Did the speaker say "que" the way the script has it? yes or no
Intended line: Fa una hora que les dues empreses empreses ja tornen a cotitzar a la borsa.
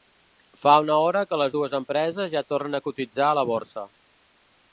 yes